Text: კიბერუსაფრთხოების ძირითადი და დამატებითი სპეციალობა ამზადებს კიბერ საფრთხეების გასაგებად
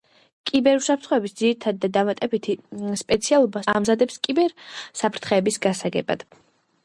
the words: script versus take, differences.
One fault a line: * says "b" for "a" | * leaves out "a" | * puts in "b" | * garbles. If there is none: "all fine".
all fine